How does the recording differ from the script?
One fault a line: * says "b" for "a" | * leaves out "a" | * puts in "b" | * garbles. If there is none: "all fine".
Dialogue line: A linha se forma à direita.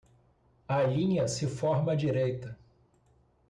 all fine